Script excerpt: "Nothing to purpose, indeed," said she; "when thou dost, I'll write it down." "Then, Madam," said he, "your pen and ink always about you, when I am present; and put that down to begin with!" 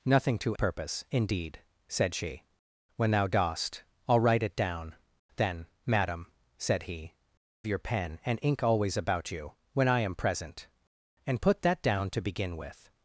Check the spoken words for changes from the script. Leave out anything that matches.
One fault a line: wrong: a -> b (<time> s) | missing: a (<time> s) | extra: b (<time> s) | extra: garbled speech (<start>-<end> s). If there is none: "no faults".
no faults